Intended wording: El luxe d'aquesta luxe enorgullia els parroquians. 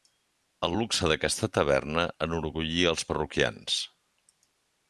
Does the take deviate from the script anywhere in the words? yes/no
yes